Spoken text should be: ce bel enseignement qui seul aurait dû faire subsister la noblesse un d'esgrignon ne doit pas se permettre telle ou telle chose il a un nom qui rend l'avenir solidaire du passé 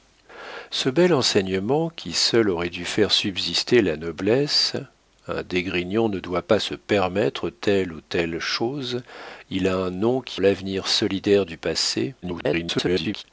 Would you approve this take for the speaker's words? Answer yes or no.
no